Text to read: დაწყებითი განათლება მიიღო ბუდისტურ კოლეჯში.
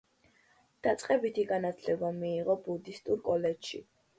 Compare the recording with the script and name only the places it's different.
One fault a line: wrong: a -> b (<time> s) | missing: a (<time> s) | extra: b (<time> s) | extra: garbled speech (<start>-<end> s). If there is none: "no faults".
no faults